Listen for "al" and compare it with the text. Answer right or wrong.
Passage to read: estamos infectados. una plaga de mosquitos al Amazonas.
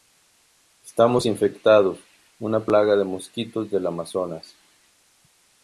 wrong